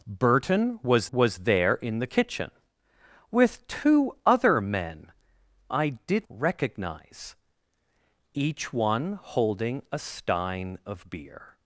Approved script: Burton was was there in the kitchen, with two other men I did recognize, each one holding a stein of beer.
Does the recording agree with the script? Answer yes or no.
yes